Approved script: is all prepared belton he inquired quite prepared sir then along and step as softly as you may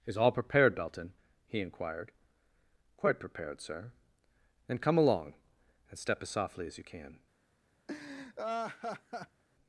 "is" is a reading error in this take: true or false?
false